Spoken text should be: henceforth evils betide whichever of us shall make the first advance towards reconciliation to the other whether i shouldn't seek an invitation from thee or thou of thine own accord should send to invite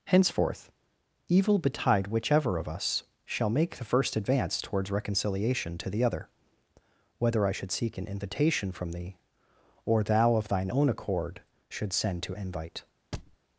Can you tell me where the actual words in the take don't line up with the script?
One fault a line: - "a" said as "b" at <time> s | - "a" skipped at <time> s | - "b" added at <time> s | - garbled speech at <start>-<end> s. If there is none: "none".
- "evils" said as "evil" at 1.3 s
- "shouldn't" said as "should" at 7.5 s